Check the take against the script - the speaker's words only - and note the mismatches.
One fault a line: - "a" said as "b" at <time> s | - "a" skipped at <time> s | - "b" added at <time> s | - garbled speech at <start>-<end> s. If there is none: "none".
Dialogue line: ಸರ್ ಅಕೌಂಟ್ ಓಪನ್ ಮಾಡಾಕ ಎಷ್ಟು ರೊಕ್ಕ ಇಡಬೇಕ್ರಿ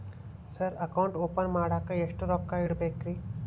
none